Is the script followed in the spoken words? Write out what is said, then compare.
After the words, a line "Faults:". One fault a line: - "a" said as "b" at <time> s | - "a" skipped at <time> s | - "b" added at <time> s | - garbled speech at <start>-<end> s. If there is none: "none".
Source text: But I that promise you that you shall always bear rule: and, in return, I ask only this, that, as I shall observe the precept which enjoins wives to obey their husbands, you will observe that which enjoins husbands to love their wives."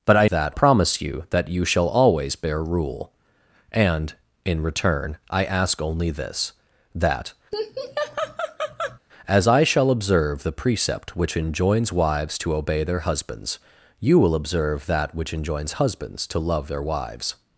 But I that promise you that you shall always bear rule: and, in return, I ask only this, that, as I shall observe the precept which enjoins wives to obey their husbands, you will observe that which enjoins husbands to love their wives."
Faults:
none